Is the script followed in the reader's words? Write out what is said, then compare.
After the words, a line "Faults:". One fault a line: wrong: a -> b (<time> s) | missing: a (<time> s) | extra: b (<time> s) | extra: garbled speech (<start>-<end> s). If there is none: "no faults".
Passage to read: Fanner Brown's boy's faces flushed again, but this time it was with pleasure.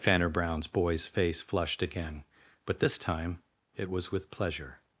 Fanner Brown's boy's face flushed again, but this time it was with pleasure.
Faults:
wrong: faces -> face (1.1 s)